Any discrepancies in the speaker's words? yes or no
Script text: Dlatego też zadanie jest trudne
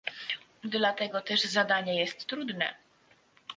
no